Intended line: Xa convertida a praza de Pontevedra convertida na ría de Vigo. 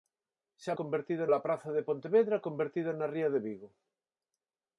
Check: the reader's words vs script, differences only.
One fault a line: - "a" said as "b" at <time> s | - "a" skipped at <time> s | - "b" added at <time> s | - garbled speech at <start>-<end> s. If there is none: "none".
none